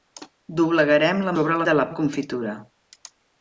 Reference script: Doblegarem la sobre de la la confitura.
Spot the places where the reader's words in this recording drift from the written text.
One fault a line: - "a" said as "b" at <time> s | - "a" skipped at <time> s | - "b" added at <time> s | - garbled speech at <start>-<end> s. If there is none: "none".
none